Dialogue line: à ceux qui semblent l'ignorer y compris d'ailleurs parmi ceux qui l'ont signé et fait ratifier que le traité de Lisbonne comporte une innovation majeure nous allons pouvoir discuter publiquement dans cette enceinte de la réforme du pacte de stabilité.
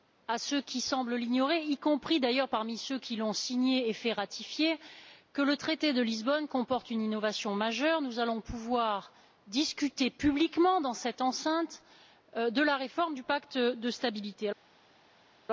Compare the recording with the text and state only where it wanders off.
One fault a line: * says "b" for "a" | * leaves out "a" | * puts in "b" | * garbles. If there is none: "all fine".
all fine